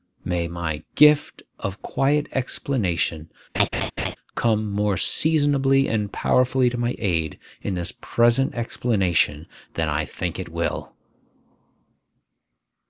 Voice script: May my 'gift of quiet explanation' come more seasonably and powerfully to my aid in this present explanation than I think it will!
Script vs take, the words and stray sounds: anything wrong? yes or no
yes